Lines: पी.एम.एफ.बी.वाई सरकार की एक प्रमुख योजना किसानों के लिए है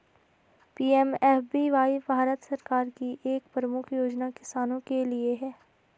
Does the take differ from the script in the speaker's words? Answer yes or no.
yes